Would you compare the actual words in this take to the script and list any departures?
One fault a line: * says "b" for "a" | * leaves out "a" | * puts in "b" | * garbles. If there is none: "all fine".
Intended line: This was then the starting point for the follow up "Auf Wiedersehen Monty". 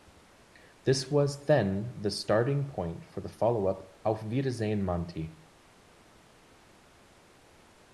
all fine